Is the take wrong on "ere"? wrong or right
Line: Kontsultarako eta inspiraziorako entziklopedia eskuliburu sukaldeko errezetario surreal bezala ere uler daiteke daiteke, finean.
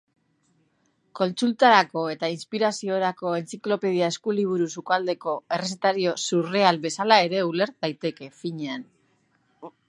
right